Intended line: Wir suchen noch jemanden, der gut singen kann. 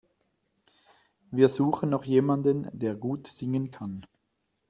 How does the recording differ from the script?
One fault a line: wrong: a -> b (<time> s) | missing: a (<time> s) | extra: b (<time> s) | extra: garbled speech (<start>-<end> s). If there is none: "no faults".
no faults